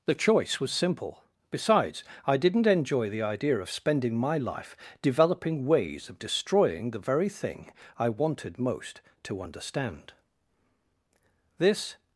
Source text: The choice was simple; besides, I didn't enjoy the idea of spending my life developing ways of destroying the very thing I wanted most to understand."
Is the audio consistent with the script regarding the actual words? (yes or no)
no